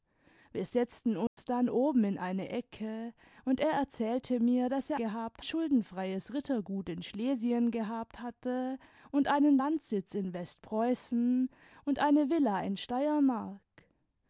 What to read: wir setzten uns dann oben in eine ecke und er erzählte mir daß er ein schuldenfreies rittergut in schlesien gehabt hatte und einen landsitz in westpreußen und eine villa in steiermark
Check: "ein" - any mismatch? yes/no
yes